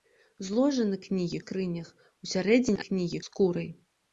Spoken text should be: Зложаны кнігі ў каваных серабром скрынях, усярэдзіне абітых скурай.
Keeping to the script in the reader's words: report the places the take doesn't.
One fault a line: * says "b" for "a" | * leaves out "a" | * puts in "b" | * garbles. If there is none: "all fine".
* leaves out "ў каваных серабром"
* says "кнігі" for "абітых"